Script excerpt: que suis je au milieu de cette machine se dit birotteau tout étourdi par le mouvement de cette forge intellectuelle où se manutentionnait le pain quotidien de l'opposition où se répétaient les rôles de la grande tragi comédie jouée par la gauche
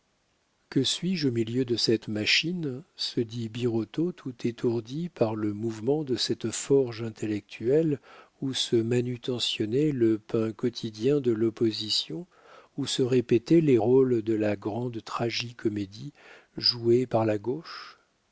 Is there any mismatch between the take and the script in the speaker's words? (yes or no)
no